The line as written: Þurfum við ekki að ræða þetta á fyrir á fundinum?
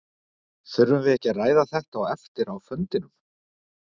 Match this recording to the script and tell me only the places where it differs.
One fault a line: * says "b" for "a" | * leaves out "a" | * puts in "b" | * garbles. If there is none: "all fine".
* says "eftir" for "fyrir"